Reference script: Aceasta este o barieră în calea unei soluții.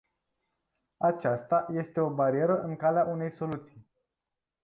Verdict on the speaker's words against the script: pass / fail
pass